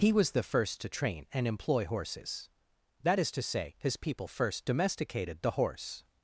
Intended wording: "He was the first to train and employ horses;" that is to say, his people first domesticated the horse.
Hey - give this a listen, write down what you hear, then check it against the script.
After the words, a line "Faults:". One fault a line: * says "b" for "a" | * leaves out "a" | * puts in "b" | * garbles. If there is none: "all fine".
"He was the first to train and employ horses;" that is to say, his people first domesticated the horse.
Faults:
all fine